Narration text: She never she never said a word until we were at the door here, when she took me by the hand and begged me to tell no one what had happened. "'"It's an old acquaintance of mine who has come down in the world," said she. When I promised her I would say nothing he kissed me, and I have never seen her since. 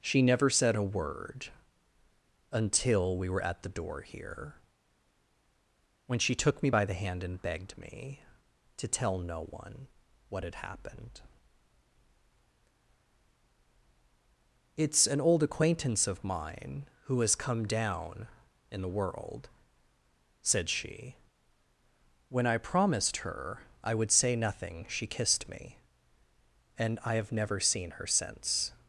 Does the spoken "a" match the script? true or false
true